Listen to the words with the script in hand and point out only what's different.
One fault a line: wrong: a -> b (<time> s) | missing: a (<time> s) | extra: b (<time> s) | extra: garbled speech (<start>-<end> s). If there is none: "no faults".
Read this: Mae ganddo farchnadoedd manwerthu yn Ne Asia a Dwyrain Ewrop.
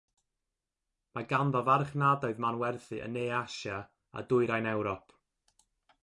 no faults